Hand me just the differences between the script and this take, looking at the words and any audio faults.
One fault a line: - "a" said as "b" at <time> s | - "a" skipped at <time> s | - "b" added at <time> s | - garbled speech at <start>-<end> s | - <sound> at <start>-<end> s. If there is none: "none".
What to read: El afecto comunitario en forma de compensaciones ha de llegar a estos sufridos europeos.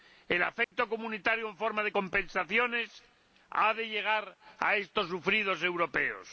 - dropout at 0.6-0.7 s